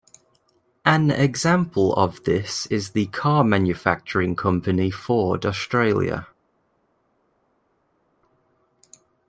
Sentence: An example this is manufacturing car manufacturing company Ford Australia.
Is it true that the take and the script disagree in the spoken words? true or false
true